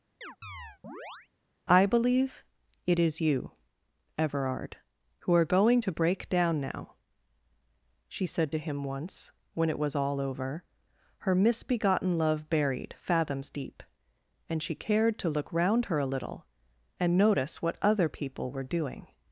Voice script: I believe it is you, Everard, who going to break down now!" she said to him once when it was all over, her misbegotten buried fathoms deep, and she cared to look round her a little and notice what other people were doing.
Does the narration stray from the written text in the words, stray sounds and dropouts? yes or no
yes